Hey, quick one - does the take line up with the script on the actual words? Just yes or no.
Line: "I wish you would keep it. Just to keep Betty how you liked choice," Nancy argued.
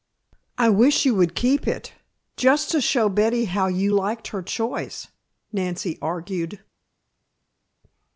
no